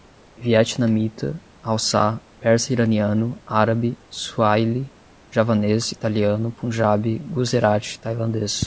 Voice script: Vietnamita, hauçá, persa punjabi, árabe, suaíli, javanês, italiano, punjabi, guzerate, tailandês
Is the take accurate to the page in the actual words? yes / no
no